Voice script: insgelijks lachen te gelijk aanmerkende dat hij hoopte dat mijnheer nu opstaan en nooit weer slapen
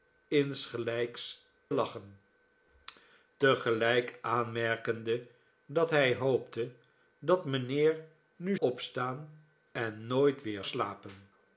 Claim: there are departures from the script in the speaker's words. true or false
false